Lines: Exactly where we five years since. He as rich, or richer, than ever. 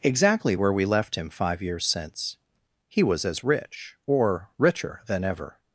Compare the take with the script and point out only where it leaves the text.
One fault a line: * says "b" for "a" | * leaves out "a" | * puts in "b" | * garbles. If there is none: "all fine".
* puts in "left him"
* puts in "was"